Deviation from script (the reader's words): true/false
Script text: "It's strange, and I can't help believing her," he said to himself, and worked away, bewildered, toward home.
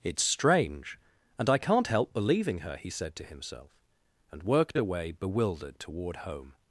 false